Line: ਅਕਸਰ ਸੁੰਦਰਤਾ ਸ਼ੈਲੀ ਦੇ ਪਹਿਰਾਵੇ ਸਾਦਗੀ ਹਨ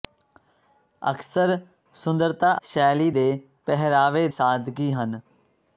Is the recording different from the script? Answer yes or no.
no